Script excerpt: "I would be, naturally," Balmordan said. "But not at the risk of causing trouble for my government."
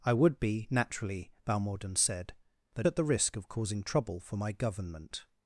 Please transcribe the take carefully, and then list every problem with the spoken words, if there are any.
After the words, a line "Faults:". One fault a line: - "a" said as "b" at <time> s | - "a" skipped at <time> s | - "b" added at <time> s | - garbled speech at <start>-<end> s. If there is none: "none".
"I would be, naturally," Balmordan said. "But at the risk of causing trouble for my government."
Faults:
- "not" skipped at 2.9 s